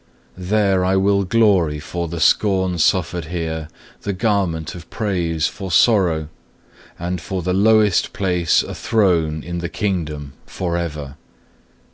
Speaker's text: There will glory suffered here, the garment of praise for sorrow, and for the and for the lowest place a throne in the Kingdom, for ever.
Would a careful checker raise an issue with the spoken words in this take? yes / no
yes